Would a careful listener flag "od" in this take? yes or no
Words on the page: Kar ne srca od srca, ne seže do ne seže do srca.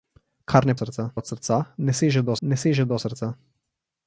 no